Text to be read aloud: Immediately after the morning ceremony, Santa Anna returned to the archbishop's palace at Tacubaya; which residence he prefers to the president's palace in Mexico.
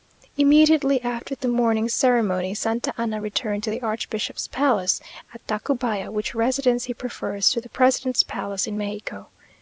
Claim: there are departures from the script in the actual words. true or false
false